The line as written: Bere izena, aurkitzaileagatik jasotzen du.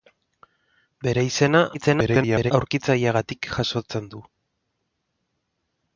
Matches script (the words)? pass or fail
fail